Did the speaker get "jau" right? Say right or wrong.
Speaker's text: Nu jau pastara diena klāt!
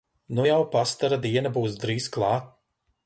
right